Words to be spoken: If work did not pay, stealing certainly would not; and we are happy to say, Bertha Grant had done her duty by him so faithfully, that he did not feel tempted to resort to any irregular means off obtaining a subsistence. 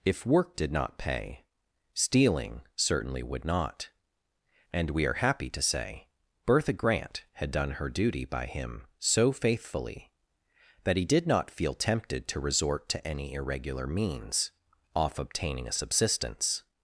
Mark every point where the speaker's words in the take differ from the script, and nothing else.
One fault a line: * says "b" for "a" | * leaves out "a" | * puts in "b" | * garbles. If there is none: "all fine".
all fine